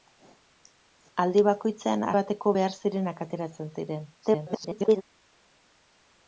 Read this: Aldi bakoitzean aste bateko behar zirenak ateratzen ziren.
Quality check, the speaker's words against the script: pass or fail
fail